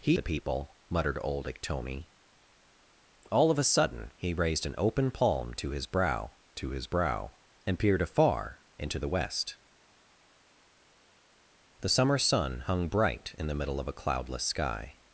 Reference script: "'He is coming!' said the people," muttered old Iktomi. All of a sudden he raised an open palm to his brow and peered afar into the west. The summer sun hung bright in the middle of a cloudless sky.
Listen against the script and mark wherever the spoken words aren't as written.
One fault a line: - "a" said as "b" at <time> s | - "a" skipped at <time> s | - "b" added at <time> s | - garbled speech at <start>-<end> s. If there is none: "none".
- "is coming said" skipped at 0.2 s
- "to his brow" added at 6.5 s